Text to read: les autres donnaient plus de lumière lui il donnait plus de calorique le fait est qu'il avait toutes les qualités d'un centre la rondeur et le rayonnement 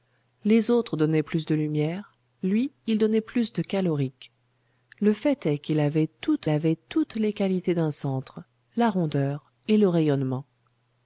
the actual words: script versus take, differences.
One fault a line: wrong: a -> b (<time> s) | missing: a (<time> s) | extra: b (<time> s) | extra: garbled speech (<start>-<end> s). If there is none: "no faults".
extra: avait toutes (6.5 s)